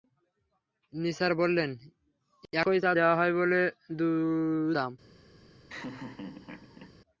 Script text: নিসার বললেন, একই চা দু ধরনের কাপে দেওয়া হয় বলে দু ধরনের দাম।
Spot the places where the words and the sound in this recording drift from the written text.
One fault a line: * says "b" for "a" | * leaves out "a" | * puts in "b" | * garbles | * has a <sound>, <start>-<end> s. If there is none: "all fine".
* leaves out "দু ধরনের কাপে"
* leaves out "ধরনের"
* has a laugh, 5.7-7.0 s